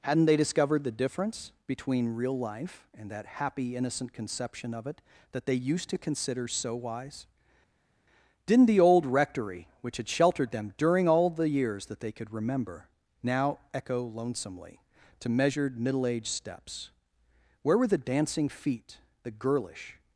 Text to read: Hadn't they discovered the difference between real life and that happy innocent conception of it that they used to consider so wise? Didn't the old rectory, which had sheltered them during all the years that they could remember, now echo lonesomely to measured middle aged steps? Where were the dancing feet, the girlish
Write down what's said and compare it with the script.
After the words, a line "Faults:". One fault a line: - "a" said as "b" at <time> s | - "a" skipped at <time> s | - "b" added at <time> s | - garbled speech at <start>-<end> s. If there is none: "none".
Hadn't they discovered the difference between real life and that happy innocent conception of it that they used to consider so wise? Didn't the old rectory, which had sheltered them during all the years that they could remember, now echo lonesomely to measured middle aged steps? Where were the dancing feet, the girlish
Faults:
none